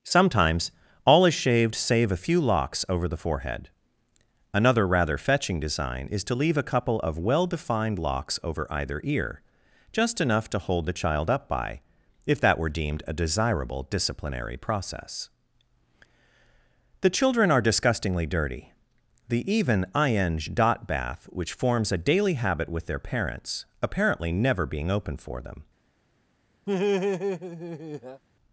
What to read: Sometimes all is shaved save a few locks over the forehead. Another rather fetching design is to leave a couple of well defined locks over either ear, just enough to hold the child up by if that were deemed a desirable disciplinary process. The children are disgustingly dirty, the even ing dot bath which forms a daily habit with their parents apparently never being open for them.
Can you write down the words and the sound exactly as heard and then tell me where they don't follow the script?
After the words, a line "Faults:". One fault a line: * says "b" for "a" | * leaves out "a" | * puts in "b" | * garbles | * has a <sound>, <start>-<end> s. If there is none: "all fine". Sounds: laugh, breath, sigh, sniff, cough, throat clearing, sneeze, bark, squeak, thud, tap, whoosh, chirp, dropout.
Sometimes all is shaved save a few locks over the forehead. Another rather fetching design is to leave a couple of well defined locks over either ear, just enough to hold the child up by if that were deemed a desirable disciplinary process. The children are disgustingly dirty, the even ing dot bath which forms a daily habit with their parents apparently never being open for them.
Faults:
* has a laugh, 26.7-28.2 s